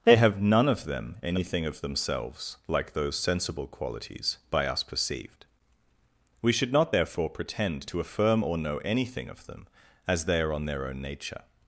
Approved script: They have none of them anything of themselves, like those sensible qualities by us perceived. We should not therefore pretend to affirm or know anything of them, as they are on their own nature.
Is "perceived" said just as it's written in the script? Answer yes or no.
yes